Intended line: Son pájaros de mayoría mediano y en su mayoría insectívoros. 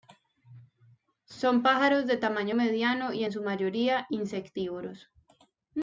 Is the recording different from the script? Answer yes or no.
yes